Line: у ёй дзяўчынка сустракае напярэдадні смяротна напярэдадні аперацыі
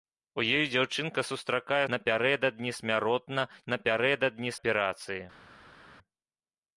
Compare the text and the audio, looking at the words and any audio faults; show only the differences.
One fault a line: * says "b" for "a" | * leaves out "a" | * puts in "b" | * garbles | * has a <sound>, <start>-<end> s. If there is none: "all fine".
all fine